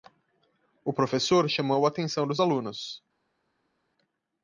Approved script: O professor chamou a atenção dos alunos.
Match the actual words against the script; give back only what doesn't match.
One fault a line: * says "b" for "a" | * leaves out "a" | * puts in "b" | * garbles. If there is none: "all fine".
all fine